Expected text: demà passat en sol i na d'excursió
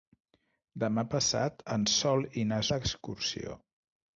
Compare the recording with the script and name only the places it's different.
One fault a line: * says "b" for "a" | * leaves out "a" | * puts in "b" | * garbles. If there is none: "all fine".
all fine